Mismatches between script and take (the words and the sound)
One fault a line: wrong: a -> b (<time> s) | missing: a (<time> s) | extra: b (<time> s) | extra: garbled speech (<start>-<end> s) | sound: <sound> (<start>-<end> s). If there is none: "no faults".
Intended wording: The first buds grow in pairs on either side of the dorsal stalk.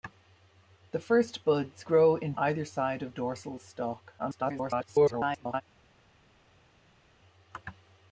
missing: pairs on (2.3 s)
missing: the (3.1 s)
extra: garbled speech (4.2-5.6 s)